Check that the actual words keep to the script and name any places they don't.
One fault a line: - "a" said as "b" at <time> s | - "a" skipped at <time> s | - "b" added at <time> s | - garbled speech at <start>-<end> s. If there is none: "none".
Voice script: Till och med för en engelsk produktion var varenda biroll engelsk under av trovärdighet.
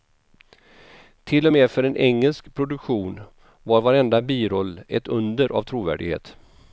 - "engelsk" said as "ett" at 4.9 s